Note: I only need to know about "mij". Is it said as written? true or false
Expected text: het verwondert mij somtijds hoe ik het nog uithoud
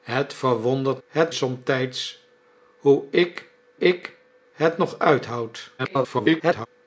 false